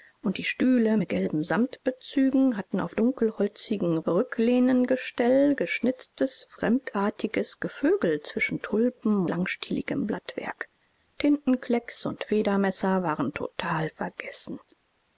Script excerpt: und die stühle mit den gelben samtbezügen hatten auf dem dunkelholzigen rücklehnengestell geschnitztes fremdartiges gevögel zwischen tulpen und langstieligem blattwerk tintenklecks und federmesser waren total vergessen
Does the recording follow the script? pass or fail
fail